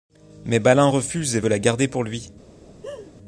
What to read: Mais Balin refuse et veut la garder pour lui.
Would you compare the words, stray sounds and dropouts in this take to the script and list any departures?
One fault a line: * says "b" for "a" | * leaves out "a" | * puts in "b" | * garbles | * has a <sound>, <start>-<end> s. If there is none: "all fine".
* has a laugh, 2.7-3.1 s